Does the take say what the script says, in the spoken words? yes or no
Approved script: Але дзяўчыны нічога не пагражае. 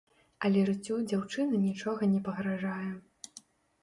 no